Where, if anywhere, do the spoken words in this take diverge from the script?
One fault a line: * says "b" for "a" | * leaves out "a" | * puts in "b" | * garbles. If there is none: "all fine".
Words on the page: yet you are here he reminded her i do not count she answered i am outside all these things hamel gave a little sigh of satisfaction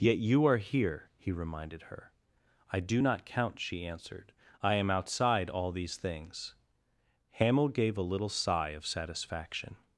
all fine